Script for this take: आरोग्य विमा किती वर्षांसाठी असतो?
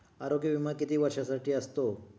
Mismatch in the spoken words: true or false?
false